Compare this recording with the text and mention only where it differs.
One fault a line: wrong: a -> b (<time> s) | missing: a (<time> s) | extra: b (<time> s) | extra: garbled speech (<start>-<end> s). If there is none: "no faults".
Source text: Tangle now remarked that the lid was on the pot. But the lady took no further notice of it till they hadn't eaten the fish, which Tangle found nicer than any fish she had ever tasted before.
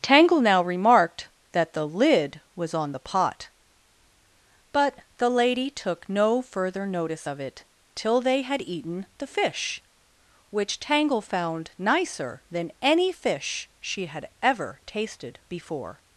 wrong: hadn't -> had (8.4 s)